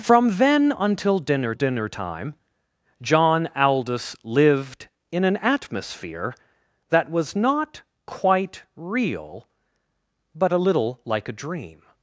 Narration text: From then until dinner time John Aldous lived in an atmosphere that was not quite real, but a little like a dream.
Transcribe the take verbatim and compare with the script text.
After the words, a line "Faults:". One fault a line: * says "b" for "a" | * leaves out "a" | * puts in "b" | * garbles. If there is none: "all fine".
From then until dinner dinner time John Aldous lived in an atmosphere that was not quite real, but a little like a dream.
Faults:
* puts in "dinner"